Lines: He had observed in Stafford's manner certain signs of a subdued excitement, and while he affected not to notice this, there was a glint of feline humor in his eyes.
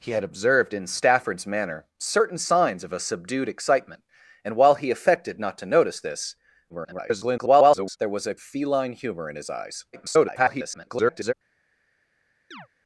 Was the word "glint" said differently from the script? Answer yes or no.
yes